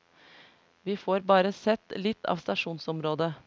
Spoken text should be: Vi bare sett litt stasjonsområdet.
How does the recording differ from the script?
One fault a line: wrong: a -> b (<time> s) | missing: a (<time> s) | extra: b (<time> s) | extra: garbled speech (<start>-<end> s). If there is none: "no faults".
extra: får (1.0 s)
extra: av (2.2 s)